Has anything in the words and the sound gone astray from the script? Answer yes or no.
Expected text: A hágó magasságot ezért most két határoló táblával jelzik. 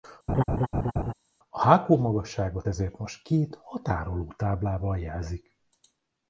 yes